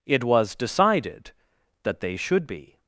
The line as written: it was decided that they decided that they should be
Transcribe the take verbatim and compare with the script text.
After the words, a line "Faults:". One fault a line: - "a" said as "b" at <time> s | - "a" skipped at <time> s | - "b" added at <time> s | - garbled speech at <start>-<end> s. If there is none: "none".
it was decided that they should be
Faults:
- "decided that they" skipped at 2.1 s